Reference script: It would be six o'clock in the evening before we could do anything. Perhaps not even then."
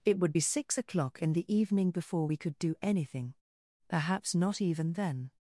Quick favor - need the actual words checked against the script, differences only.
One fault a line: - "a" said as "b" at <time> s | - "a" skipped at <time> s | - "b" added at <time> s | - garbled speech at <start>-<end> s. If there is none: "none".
none